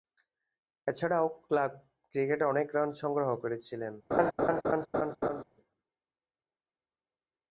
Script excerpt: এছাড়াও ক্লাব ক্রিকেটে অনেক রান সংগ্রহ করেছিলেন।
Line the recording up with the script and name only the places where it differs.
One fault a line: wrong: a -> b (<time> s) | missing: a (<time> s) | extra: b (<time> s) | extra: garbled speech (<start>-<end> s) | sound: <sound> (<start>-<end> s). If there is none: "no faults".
sound: laugh (4.1-5.4 s)